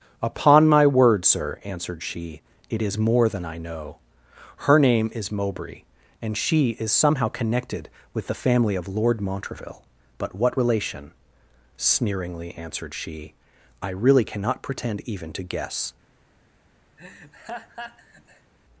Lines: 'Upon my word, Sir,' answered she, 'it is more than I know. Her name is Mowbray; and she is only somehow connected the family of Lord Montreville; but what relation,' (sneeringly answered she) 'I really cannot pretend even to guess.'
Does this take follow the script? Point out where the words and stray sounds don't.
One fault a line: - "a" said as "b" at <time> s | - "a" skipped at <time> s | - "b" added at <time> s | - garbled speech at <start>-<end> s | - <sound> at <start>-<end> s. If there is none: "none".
- "only" skipped at 6.9 s
- "with" added at 8.1 s
- laugh at 17.0-18.5 s